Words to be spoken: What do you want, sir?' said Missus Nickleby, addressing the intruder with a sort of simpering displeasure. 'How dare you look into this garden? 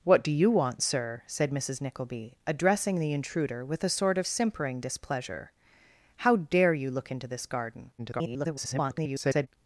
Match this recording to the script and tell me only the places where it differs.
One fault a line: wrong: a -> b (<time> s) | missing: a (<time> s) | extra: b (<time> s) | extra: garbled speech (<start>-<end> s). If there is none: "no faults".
extra: garbled speech (8.0-9.5 s)